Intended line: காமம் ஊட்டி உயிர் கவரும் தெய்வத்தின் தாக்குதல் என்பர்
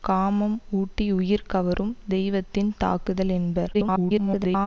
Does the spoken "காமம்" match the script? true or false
true